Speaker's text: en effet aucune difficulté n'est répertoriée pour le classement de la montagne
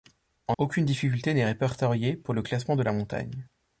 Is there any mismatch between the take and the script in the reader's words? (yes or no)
yes